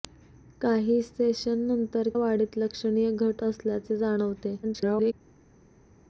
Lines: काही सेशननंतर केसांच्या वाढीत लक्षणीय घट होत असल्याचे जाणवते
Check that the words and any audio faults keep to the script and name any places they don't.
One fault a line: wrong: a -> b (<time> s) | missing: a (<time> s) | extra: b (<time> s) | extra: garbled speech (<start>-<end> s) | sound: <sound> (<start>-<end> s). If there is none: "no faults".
missing: केसांच्या (2.1 s)
missing: होत (3.4 s)
extra: garbled speech (4.6-5.1 s)